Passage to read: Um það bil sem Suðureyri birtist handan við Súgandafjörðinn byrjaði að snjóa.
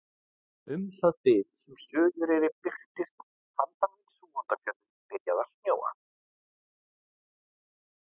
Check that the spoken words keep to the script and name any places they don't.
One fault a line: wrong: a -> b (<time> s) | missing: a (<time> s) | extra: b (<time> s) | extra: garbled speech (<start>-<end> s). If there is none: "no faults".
no faults